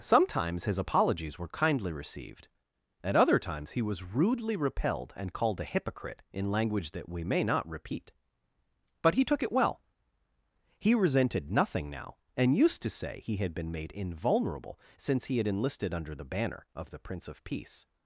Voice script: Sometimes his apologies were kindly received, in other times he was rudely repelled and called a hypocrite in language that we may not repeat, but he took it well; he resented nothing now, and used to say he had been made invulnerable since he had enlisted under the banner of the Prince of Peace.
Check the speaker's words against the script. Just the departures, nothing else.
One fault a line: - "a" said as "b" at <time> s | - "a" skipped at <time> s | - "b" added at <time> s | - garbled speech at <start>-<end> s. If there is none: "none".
- "in" said as "at" at 3.0 s